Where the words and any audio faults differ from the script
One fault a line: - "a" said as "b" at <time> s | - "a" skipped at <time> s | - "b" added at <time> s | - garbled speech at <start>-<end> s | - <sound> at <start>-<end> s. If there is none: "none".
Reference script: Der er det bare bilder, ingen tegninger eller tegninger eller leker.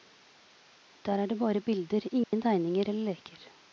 - dropout at 2.2-2.3 s
- "tegninger eller" skipped at 3.1 s